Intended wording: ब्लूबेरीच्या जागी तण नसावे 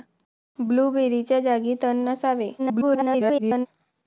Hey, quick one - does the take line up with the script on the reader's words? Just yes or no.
no